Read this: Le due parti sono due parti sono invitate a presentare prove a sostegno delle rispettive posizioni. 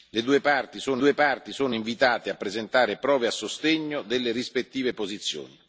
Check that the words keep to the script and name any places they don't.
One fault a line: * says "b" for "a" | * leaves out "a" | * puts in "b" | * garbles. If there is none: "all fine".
all fine